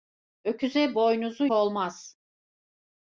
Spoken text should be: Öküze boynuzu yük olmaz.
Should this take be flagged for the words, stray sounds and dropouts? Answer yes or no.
yes